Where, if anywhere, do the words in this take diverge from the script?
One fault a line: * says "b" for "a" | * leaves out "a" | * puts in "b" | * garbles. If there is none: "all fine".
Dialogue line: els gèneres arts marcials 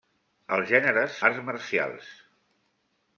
all fine